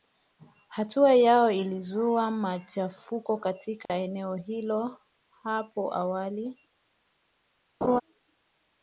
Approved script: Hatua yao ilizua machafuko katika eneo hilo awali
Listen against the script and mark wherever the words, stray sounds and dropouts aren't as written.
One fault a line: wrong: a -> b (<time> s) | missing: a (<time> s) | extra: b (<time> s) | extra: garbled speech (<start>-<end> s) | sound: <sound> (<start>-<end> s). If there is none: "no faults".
sound: dropout (3.9-3.9 s)
extra: hapo (5.4 s)
sound: laugh (7.8-8.0 s)